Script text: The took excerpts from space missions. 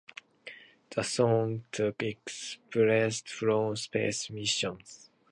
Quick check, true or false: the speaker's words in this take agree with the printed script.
false